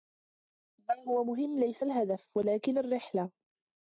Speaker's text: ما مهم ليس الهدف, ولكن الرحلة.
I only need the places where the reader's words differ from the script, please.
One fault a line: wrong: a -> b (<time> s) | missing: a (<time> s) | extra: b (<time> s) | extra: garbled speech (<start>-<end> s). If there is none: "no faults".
extra: هو (1.1 s)